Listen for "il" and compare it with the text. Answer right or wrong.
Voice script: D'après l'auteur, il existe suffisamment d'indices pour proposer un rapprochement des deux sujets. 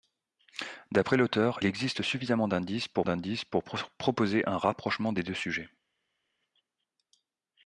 wrong